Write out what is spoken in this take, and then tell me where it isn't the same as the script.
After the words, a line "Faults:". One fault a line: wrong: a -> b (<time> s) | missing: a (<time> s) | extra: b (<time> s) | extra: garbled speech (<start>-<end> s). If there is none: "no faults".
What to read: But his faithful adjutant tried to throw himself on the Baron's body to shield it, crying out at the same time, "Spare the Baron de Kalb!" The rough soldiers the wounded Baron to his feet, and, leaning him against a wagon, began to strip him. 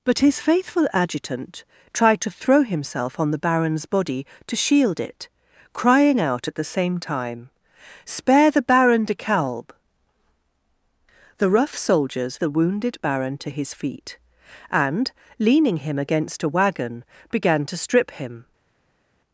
But his faithful adjutant tried to throw himself on the Baron's body to shield it, crying out at the same time, "Spare the Baron de Kalb!" The rough soldiers the wounded Baron to his feet, and, leaning him against a wagon, began to strip him.
Faults:
no faults